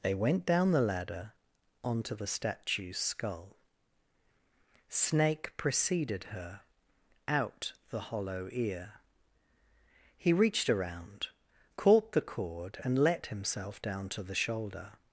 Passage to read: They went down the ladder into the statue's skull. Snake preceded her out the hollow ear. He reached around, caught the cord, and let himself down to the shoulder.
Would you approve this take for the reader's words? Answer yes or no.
no